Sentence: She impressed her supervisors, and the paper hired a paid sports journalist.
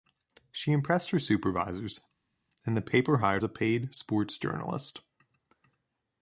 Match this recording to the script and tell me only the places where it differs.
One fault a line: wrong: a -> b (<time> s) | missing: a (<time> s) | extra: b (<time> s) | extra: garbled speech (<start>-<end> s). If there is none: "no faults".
no faults